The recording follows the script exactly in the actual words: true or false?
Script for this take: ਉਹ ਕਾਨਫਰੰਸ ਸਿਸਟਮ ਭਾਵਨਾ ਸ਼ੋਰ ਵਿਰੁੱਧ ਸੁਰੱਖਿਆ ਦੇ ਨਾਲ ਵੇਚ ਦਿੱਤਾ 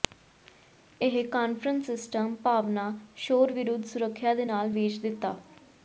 false